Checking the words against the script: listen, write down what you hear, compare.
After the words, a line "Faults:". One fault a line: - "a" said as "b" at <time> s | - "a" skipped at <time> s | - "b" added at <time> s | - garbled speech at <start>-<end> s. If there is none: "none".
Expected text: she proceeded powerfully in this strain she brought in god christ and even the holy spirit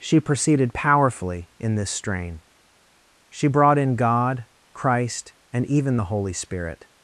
she proceeded powerfully in this strain she brought in god christ and even the holy spirit
Faults:
none